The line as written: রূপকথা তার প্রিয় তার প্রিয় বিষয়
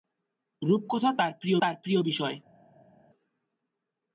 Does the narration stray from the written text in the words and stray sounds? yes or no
no